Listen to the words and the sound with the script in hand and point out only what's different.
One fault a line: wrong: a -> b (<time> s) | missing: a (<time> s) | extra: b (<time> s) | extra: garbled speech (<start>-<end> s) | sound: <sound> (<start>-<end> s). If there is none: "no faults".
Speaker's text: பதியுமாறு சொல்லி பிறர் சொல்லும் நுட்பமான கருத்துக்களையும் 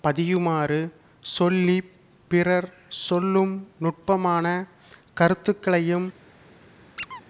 sound: squeak (7.0-7.2 s)